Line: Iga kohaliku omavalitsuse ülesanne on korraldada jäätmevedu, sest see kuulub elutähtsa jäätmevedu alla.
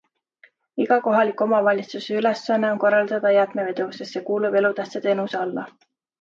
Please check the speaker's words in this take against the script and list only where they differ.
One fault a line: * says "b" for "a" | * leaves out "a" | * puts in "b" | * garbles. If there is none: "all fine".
* says "teenuse" for "jäätmevedu"